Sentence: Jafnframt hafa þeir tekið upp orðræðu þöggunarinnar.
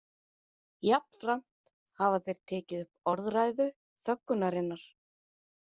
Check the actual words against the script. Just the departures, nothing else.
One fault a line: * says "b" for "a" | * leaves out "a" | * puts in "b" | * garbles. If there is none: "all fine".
all fine